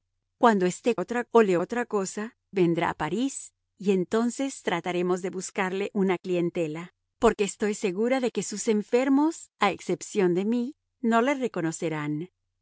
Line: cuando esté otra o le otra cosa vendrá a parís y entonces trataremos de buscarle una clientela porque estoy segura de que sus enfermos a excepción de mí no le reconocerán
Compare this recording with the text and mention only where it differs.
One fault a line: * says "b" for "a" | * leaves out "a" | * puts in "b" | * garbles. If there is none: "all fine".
all fine